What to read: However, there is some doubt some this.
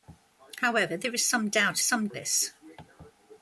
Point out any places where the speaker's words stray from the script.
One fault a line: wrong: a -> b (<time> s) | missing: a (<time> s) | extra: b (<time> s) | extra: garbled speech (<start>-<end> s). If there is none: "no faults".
no faults